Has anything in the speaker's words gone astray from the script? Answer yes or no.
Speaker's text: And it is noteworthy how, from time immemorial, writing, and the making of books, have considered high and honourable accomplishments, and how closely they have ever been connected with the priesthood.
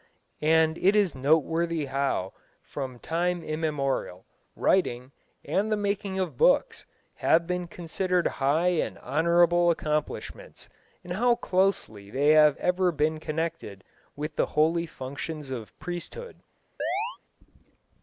yes